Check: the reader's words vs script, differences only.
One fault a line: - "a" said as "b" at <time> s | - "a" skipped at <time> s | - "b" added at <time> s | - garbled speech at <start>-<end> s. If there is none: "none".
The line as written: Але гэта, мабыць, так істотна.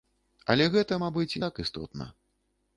none